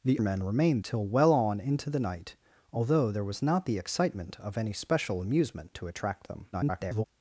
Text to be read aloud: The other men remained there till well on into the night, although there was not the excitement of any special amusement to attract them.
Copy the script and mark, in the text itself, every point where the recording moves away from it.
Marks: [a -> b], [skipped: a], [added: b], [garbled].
The [skipped: other] men remained [skipped: there] till well on into the night, although there was not the excitement of any special amusement to attract them. [garbled]